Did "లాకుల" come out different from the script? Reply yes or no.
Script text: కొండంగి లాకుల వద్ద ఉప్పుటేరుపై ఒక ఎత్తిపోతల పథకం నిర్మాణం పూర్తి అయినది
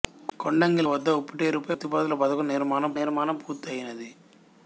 yes